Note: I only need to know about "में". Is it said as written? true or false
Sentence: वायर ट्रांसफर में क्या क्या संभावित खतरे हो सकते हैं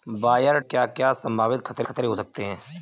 false